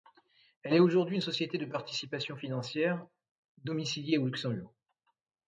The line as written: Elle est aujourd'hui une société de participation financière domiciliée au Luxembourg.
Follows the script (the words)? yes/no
yes